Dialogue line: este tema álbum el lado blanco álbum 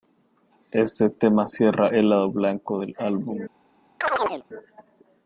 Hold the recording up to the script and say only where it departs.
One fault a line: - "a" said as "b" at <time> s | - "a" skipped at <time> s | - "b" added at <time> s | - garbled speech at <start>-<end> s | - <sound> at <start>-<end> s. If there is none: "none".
- "álbum" said as "cierra" at 1.4 s
- "del" added at 2.8 s
- chirp at 4.0-4.4 s